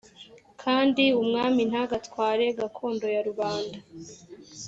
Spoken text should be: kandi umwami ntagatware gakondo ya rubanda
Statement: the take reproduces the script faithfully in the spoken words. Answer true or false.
true